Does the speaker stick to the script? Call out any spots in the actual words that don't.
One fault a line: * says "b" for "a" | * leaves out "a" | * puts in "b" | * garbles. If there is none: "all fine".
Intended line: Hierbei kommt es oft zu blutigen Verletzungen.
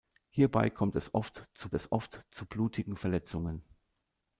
* puts in "es oft zu"